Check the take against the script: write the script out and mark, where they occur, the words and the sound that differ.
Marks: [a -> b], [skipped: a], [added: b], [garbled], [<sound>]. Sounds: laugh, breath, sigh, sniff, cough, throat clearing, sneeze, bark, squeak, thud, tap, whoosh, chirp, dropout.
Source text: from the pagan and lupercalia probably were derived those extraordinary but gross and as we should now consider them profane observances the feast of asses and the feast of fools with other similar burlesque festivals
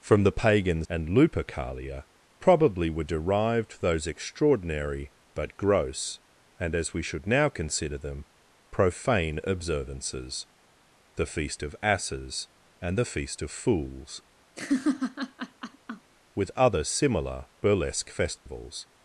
from the pagan and lupercalia probably were derived those extraordinary but gross and as we should now consider them profane observances the feast of asses and the feast of fools [laugh] with other similar burlesque festivals [dropout]